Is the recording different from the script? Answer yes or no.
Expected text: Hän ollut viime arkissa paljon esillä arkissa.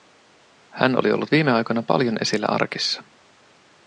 yes